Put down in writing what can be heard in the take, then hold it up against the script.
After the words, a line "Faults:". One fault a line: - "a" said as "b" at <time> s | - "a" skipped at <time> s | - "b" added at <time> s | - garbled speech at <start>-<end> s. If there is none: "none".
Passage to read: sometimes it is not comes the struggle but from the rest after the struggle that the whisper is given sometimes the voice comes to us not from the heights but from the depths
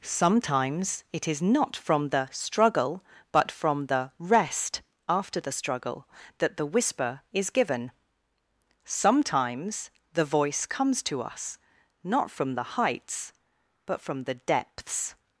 sometimes it is not from the struggle but from the rest after the struggle that the whisper is given sometimes the voice comes to us not from the heights but from the depths
Faults:
- "comes" said as "from" at 1.8 s